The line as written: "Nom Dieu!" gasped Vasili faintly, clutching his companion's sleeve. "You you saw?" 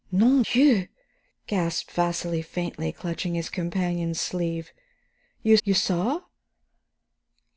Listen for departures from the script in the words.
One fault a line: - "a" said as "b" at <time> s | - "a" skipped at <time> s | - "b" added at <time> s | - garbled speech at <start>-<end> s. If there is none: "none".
none